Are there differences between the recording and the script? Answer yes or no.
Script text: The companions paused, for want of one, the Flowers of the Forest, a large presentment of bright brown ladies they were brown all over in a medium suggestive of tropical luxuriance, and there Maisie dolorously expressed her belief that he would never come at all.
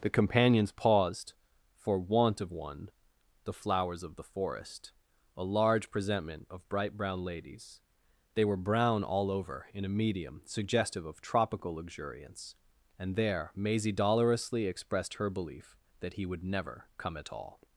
no